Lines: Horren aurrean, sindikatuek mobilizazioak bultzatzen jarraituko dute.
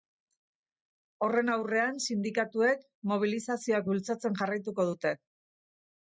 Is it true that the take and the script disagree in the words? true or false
false